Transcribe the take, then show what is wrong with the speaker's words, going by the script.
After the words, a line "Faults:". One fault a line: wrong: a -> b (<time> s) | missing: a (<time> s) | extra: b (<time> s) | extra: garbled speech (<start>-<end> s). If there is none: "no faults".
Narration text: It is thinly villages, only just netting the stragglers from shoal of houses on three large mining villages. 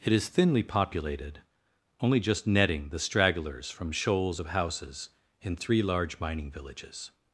It is thinly populated, only just netting the stragglers from shoals of houses in three large mining villages.
Faults:
wrong: villages -> populated (0.6 s)
wrong: shoal -> shoals (3.9 s)
wrong: on -> in (5.4 s)